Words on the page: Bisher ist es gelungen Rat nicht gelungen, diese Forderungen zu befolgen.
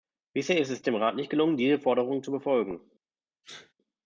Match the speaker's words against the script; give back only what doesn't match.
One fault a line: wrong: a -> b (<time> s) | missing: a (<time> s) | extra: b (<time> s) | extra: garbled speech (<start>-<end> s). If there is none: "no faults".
wrong: gelungen -> dem (0.8 s)